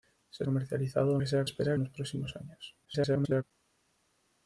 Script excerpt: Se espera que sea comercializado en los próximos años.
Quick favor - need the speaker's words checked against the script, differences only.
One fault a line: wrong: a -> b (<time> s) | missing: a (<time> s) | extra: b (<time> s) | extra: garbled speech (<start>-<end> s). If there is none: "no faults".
wrong: espera -> comercializado (0.4 s)
wrong: comercializado -> espera (1.4 s)
extra: garbled speech (2.8-3.4 s)